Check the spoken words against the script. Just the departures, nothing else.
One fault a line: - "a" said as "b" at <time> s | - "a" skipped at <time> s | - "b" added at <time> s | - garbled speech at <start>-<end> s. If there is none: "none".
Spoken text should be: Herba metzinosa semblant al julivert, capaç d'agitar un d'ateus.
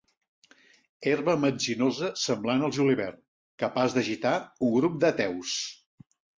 - "grup" added at 4.8 s